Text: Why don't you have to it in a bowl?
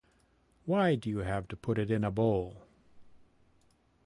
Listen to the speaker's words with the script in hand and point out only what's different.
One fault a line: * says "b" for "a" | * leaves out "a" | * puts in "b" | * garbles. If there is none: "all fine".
* says "do" for "don't"
* puts in "put"